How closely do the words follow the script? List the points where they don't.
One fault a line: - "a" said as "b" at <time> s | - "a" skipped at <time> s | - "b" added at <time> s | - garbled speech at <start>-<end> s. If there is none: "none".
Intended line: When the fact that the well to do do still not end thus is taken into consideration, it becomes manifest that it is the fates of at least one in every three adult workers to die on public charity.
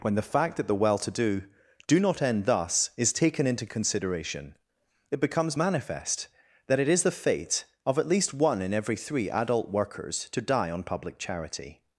- "still" skipped at 2.0 s
- "fates" said as "fate" at 7.1 s